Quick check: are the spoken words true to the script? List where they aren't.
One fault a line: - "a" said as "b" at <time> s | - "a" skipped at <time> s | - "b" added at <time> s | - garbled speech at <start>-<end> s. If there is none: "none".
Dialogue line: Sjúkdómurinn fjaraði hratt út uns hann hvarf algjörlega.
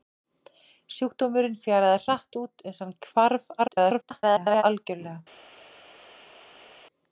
- garbled speech at 3.6-4.6 s